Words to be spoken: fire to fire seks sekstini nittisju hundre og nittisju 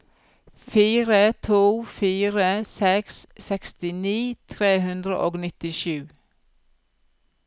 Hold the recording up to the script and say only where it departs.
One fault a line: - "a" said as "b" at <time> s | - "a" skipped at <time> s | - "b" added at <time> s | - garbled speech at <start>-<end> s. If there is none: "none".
- "nittisju" said as "tre" at 4.5 s